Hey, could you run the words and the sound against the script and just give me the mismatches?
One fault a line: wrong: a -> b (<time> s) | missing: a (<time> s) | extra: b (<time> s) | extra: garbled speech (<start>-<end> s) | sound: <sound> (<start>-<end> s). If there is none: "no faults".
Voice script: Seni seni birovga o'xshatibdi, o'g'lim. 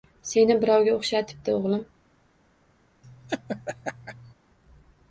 missing: seni (0.5 s)
sound: laugh (3.0-4.3 s)